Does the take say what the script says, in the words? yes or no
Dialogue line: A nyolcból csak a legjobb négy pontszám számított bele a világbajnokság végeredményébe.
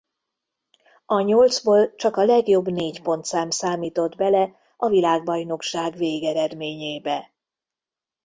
yes